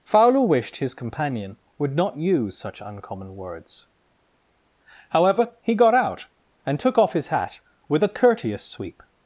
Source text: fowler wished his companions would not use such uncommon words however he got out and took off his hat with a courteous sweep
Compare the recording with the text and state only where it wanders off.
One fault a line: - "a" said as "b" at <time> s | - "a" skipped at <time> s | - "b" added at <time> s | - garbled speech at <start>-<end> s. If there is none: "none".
- "companions" said as "companion" at 0.9 s